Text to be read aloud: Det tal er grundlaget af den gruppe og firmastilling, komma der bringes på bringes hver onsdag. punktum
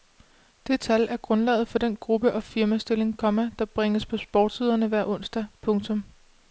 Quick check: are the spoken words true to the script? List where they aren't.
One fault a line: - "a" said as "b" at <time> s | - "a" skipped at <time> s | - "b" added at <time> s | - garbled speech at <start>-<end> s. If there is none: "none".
- "af" said as "for" at 1.7 s
- "bringes" said as "sportssiderne" at 4.2 s